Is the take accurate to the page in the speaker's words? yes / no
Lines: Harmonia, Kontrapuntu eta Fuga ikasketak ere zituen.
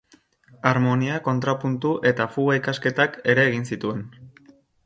no